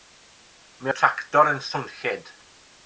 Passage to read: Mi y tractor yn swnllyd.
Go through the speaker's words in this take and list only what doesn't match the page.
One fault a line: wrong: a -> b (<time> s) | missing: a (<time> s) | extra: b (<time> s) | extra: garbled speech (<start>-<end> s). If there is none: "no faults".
no faults